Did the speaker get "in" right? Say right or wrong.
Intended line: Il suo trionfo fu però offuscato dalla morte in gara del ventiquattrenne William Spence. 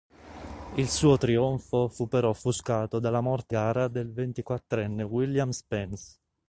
wrong